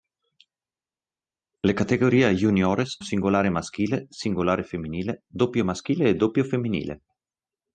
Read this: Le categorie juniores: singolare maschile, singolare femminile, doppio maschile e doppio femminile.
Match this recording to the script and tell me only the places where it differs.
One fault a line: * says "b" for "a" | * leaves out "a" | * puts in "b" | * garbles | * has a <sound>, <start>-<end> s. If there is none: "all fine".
all fine